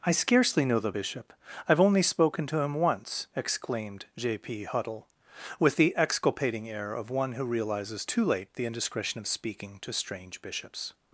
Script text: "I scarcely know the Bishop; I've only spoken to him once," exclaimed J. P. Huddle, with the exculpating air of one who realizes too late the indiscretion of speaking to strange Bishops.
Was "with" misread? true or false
false